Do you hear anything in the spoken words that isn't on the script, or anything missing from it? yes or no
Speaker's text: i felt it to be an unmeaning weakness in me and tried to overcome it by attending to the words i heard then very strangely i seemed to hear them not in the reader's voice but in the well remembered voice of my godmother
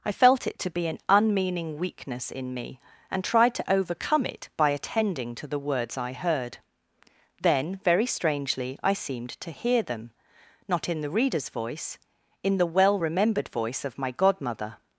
yes